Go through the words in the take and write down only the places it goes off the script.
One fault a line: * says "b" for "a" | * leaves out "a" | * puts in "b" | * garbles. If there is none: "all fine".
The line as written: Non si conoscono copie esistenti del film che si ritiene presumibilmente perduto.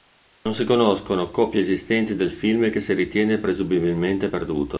all fine